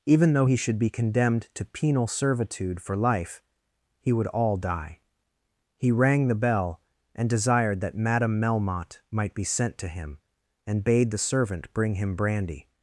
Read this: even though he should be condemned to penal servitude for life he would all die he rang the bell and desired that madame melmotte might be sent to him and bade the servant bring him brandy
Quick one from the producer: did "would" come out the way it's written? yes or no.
yes